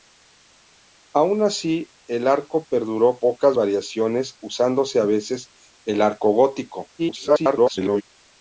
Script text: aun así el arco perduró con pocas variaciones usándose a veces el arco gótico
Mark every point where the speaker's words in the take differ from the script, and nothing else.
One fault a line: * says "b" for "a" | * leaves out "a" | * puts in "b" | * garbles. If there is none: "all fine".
* leaves out "con"
* garbles